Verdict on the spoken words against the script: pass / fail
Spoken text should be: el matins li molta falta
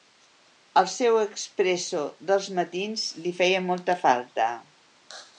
fail